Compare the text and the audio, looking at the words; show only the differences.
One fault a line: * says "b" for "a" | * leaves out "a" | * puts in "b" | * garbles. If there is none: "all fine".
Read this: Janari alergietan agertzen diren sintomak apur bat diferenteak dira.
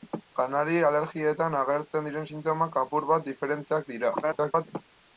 * garbles